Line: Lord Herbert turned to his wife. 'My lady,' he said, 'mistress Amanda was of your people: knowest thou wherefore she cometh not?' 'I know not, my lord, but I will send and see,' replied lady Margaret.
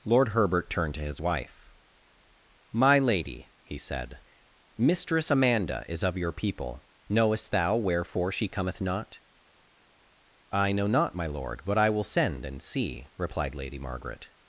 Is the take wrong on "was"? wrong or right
wrong